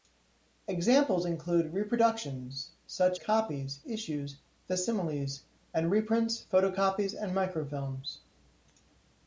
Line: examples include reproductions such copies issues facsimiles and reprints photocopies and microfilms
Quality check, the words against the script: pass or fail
pass